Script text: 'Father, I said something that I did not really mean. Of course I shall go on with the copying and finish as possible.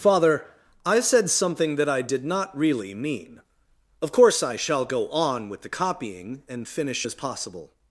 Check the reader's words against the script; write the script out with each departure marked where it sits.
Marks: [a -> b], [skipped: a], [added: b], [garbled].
'Father, I said something that I did not really mean. Of course I shall go on with the copying and finish as possible.